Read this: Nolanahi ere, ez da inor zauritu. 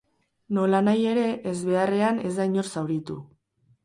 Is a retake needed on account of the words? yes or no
yes